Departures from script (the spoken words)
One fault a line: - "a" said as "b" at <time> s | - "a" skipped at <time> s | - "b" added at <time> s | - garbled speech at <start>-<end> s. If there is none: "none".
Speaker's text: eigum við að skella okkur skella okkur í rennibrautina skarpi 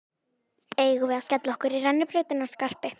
- "skella okkur" skipped at 1.8 s